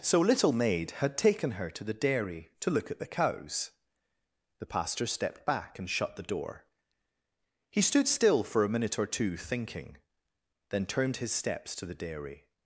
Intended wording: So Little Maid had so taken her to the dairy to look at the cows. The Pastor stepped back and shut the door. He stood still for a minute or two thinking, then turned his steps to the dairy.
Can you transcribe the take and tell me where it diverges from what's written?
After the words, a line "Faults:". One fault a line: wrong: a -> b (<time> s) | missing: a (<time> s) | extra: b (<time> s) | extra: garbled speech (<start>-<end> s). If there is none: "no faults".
So Little Maid had taken her to the dairy to look at the cows. The Pastor stepped back and shut the door. He stood still for a minute or two thinking, then turned his steps to the dairy.
Faults:
missing: so (1.1 s)